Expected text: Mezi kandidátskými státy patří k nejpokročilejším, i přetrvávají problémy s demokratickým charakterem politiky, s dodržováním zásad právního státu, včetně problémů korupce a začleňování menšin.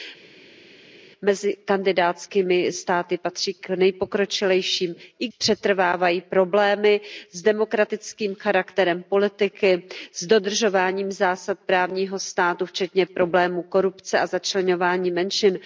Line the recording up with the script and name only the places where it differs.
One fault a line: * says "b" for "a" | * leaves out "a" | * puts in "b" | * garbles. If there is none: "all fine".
all fine